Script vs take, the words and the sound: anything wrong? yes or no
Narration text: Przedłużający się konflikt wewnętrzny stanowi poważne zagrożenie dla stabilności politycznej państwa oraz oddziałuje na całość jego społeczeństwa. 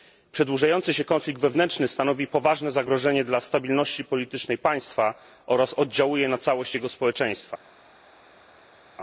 no